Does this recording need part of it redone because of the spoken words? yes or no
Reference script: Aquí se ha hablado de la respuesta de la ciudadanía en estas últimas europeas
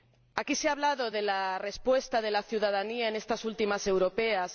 no